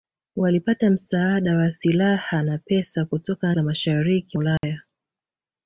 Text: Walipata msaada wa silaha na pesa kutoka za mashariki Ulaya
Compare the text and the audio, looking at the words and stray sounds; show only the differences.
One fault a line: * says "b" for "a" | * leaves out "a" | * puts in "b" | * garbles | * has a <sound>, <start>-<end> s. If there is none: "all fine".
* has a dropout, 4.6-4.6 s